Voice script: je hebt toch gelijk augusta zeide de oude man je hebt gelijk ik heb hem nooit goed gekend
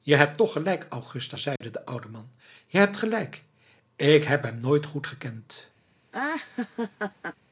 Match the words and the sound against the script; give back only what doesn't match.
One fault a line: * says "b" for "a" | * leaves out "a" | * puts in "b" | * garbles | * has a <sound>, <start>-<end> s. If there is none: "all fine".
* has a dropout, 1.6-1.6 s
* has a laugh, 6.1-7.4 s